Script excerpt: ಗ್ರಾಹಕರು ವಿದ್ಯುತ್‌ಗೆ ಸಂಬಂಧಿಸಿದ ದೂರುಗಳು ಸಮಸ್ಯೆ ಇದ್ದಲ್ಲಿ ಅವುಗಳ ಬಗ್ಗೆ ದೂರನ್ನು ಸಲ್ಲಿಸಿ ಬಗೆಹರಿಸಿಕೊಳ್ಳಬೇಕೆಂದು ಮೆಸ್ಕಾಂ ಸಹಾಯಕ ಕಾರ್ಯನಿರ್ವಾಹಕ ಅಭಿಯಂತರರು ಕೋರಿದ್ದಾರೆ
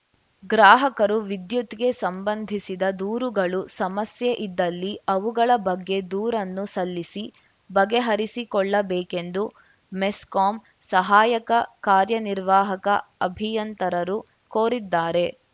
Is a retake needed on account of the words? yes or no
no